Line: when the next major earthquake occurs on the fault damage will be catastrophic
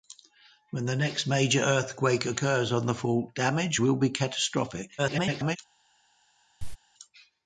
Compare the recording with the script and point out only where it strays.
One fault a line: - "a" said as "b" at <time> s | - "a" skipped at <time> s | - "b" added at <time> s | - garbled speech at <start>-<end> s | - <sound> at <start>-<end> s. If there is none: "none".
- garbled speech at 5.0-5.6 s
- cough at 6.6-6.8 s